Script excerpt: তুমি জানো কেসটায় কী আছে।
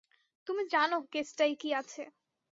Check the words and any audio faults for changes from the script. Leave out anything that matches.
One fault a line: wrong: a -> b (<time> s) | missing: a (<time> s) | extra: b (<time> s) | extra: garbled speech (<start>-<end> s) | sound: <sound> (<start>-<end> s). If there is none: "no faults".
no faults